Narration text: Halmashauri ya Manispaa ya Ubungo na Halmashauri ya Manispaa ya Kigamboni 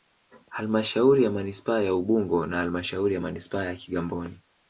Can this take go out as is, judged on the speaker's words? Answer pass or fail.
pass